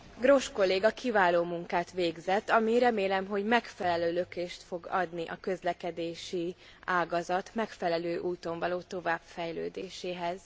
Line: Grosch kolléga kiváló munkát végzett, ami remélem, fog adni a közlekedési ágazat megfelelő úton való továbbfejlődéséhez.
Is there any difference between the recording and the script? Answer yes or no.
yes